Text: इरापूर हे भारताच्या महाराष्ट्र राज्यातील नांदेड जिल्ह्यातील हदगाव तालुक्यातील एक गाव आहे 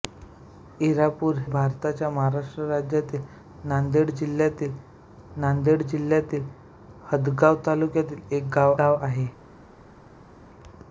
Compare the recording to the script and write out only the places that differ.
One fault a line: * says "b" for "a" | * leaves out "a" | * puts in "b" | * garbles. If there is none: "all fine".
* leaves out "हे"
* puts in "नांदेड जिल्ह्यातील"
* puts in "गाव"